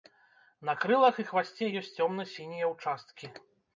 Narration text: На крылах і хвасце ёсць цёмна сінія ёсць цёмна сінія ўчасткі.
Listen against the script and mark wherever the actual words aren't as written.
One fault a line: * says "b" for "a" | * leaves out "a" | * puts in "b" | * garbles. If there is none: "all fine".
* leaves out "ёсць цёмна сінія"